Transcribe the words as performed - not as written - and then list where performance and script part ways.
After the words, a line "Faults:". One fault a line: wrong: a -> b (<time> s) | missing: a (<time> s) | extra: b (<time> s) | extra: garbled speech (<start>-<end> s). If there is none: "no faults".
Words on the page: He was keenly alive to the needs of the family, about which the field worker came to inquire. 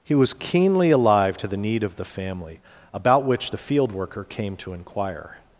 He was keenly alive to the need of the family, about which the field worker came to inquire.
Faults:
wrong: needs -> need (1.6 s)